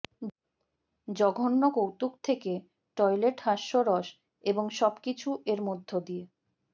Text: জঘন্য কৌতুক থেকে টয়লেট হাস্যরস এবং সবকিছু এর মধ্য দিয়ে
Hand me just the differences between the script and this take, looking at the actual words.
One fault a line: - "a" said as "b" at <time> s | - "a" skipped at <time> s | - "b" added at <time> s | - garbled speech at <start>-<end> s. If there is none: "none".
none